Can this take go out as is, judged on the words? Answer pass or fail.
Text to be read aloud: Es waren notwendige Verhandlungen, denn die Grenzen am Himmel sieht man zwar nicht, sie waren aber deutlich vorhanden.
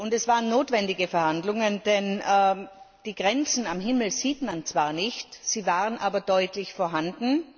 pass